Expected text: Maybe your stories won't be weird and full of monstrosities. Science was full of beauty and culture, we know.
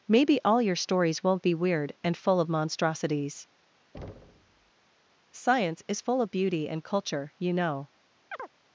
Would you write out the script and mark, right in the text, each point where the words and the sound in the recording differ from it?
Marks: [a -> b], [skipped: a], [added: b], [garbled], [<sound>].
Maybe [added: all] your stories won't be weird and full of monstrosities. [thud] Science [was -> is] full of beauty and culture, [we -> you] know. [chirp]